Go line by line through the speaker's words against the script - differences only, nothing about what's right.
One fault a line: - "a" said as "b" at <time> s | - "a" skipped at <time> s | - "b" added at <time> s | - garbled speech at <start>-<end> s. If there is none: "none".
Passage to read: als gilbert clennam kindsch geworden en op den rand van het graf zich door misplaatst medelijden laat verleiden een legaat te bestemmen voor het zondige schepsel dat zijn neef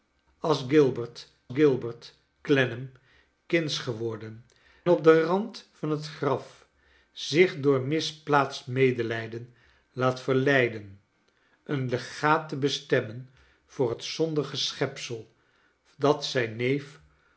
- "gilbert" added at 1.5 s
- "en" skipped at 4.4 s